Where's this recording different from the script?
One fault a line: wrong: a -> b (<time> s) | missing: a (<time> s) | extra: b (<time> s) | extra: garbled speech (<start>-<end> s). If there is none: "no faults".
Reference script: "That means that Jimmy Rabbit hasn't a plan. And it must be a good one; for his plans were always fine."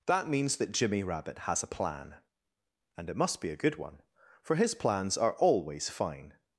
wrong: hasn't -> has (1.4 s)
wrong: were -> are (5.2 s)